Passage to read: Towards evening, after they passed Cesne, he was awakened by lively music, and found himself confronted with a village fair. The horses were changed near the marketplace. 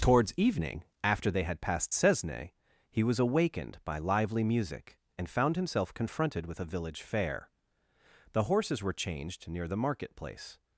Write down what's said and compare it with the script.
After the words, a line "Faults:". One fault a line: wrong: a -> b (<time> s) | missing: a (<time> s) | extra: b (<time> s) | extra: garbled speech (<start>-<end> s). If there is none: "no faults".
Towards evening, after they had passed Cesne, he was awakened by lively music, and found himself confronted with a village fair. The horses were changed near the marketplace.
Faults:
extra: had (1.4 s)